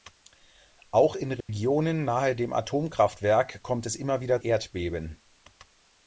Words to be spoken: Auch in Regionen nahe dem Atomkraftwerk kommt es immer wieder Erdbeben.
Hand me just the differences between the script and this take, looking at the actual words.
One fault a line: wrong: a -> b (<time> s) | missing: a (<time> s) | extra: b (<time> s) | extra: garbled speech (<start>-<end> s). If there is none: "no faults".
no faults